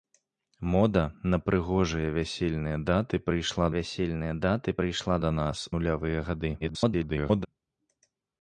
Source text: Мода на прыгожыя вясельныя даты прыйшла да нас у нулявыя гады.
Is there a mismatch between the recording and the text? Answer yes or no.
yes